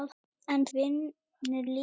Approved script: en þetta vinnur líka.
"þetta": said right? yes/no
no